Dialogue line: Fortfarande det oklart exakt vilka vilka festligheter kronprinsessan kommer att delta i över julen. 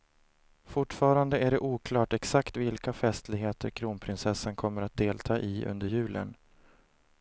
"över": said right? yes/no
no